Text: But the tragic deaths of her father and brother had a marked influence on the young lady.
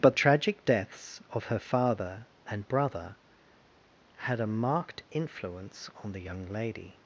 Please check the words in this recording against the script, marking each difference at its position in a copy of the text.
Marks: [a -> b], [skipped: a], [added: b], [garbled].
But [skipped: the] tragic deaths of her father and brother had a marked influence on the young lady.